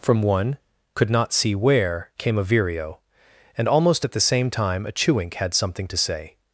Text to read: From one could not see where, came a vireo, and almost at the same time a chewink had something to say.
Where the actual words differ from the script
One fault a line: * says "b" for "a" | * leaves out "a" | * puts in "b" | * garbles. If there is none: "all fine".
all fine